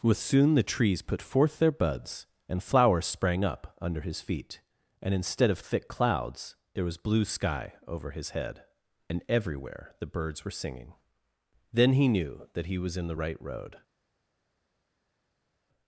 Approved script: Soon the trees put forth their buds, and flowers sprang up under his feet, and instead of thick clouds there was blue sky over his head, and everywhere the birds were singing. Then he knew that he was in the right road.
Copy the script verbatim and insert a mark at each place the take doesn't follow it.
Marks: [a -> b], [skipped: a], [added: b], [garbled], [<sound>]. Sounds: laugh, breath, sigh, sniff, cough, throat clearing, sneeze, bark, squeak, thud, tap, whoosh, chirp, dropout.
[added: with] Soon the trees put forth their buds, and flowers sprang up under his feet, and instead of thick clouds there was blue sky over his head, and everywhere the birds were singing. Then he knew that he was in the right road.